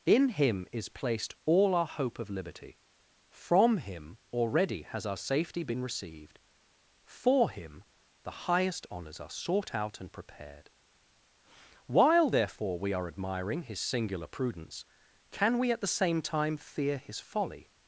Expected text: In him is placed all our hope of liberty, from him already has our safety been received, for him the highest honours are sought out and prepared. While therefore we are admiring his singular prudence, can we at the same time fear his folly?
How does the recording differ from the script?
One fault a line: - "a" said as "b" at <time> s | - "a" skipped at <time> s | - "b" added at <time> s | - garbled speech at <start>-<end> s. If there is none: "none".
none